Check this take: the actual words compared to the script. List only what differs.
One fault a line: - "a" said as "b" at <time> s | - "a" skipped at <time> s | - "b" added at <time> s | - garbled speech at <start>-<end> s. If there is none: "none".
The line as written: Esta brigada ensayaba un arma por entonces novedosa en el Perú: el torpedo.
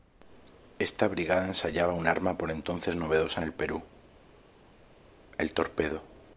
none